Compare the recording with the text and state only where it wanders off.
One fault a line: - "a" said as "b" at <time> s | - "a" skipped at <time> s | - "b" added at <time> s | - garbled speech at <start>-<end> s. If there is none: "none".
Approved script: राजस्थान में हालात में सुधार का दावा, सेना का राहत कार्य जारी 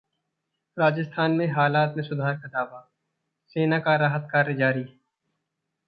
none